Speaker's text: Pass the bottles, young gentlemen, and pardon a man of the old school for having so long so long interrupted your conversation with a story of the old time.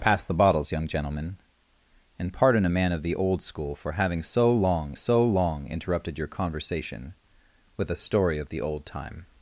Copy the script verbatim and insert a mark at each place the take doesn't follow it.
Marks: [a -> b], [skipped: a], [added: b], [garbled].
Pass the bottles, young gentlemen, and pardon a man of the old school for having so long so long interrupted your conversation with a story of the old time.